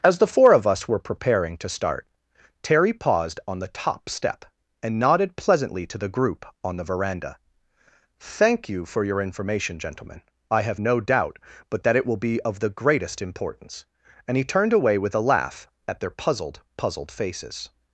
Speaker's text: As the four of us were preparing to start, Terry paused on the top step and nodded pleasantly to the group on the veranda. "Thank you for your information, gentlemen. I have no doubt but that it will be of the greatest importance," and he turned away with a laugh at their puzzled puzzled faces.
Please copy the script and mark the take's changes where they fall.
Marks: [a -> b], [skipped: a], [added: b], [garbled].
As the four of us were preparing to start, Terry paused on the top step and nodded pleasantly to the group on the veranda. "Thank you for your information, gentlemen. I have no doubt but that it will be of the greatest importance," and he turned away with a laugh at their puzzled puzzled faces.